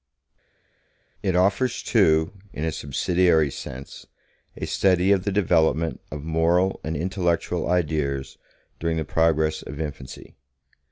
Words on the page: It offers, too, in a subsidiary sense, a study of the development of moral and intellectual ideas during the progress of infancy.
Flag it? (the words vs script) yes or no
no